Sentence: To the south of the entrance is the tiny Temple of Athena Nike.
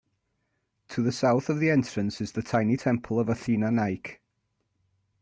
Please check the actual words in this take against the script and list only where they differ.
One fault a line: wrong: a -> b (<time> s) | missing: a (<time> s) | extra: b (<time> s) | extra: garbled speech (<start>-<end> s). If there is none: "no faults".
no faults